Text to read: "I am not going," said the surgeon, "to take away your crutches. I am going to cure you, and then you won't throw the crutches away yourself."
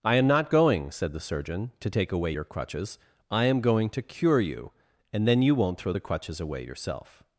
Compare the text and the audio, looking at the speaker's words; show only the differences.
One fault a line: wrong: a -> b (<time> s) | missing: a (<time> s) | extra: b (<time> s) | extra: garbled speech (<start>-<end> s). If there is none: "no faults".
no faults